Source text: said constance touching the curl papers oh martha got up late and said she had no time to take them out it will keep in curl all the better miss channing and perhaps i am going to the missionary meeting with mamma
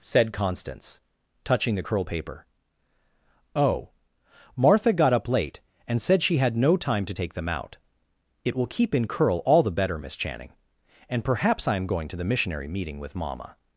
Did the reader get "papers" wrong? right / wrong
wrong